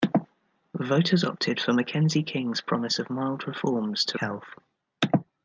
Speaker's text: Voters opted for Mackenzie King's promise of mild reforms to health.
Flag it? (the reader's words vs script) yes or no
no